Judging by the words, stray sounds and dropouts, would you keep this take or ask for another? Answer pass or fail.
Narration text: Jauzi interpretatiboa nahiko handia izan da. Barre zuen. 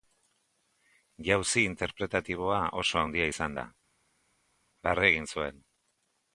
fail